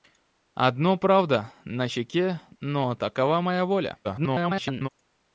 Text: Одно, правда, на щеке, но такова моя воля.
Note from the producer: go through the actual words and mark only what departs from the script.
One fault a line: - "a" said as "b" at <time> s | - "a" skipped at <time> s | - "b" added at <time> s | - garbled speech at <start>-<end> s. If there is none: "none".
- garbled speech at 4.0-4.9 s